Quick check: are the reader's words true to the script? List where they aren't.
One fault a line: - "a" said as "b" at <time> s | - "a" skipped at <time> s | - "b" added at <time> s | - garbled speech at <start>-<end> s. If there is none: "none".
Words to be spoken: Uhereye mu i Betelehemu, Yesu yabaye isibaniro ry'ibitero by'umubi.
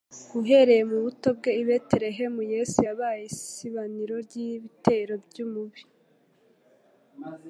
- "buto bwe" added at 1.1 s